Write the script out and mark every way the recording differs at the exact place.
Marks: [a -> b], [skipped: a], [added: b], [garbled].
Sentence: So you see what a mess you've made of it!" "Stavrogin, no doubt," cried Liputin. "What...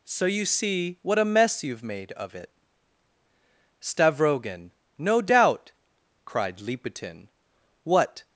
So you see what a mess you've made of it!" "Stavrogin, no doubt," cried Liputin. "What...